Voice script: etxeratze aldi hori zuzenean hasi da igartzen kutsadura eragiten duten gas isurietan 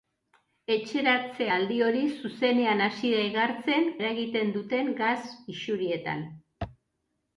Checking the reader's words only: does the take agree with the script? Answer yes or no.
no